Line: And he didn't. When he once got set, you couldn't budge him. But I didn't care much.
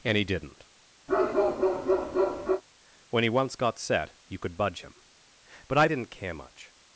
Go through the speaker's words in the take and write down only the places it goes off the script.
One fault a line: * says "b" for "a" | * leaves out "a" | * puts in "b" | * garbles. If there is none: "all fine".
* says "could" for "couldn't"